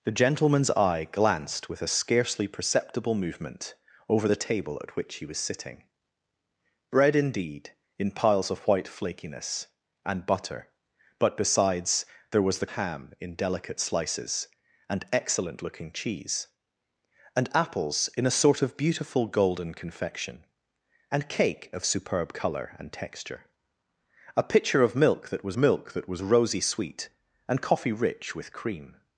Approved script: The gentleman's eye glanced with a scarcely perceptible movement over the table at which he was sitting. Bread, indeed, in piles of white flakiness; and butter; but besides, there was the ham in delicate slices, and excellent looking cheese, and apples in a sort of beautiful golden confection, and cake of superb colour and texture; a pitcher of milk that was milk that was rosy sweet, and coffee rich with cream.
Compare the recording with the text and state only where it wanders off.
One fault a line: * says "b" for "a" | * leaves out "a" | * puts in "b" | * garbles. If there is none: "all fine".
all fine